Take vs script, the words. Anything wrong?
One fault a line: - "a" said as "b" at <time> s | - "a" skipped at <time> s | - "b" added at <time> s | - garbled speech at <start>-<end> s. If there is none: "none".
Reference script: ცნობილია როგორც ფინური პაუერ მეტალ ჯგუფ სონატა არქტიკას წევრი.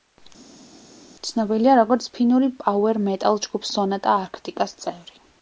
none